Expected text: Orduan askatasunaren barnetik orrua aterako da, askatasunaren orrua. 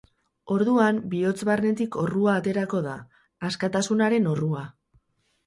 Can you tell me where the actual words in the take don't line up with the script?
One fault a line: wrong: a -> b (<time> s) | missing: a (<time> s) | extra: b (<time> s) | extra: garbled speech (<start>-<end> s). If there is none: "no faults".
wrong: askatasunaren -> bihotz (1.1 s)